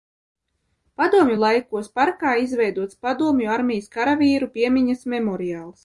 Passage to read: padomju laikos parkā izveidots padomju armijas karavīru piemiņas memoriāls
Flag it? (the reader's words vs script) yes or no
no